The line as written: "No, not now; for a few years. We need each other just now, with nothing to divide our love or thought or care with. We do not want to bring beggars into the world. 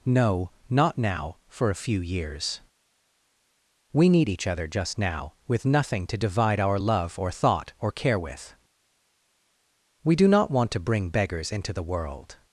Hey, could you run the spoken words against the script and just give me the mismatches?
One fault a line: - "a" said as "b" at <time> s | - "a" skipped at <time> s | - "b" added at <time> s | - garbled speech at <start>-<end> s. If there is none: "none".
none